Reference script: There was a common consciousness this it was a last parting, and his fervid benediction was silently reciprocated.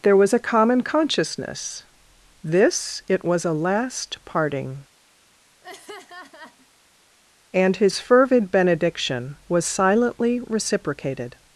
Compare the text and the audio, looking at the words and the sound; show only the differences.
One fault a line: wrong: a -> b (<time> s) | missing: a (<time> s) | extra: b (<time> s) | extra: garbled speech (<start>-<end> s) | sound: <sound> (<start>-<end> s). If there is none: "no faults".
sound: laugh (5.6-6.7 s)